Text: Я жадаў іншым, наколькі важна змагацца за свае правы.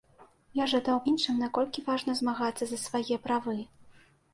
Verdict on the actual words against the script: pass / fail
pass